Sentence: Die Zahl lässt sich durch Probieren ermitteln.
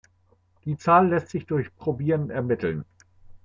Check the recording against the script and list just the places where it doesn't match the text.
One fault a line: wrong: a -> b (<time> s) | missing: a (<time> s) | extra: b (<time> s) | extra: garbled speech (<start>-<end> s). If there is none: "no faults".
no faults